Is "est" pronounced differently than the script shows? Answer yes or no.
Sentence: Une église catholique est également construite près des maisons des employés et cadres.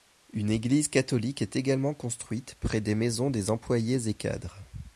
no